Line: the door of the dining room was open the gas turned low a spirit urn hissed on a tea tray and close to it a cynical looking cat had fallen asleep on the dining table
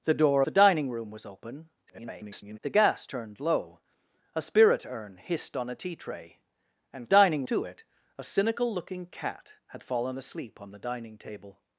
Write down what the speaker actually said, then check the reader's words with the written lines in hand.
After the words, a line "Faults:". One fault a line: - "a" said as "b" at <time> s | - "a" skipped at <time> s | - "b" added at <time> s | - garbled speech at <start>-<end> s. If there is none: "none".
the door the dining room was open [garbled] the gas turned low a spirit urn hissed on a tea tray and dining to it a cynical looking cat had fallen asleep on the dining table
Faults:
- "of" skipped at 0.4 s
- garbled speech at 1.9-2.6 s
- "close" said as "dining" at 7.1 s